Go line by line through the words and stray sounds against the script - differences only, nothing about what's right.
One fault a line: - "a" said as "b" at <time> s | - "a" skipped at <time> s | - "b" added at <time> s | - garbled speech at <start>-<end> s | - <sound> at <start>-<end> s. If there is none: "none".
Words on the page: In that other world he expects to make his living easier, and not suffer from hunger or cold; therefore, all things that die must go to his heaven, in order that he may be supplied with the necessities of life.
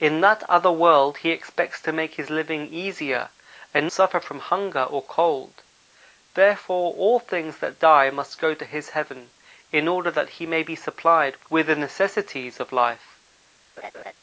- "not" skipped at 3.9 s
- laugh at 13.8-14.1 s